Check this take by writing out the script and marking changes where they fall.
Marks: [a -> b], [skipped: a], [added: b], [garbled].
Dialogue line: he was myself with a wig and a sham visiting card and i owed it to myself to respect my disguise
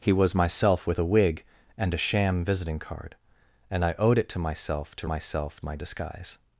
he was myself with a wig and a sham visiting card and i owed it to myself to [respect -> myself] my disguise